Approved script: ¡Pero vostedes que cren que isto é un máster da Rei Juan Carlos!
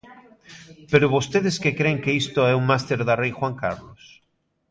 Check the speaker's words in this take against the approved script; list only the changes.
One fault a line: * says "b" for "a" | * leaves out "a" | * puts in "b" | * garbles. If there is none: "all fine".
all fine